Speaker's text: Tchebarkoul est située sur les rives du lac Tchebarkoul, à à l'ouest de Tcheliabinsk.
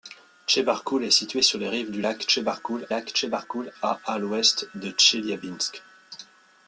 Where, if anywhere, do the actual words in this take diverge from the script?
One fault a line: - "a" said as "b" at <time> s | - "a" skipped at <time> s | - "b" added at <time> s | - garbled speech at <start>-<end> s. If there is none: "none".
- "lac Tchebarkoul" added at 2.9 s